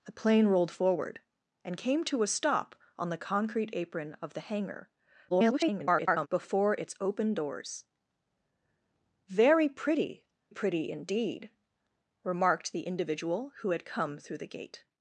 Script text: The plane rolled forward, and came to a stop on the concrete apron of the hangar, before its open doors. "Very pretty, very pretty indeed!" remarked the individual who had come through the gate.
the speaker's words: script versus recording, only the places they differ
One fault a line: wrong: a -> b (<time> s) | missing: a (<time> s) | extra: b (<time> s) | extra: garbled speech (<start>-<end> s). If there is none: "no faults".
extra: garbled speech (5.3-6.3 s)
missing: very (10.2 s)